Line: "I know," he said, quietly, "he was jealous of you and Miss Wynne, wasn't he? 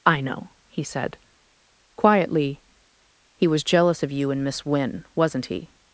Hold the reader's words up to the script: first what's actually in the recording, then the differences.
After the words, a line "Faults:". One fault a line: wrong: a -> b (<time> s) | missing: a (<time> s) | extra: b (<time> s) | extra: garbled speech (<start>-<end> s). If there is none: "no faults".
"I know," he said, quietly, "he was jealous of you and Miss Wynne, wasn't he?
Faults:
no faults